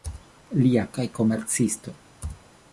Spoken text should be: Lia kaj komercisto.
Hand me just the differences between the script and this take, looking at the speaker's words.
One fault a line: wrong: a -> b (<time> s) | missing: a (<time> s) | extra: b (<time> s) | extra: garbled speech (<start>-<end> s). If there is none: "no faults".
no faults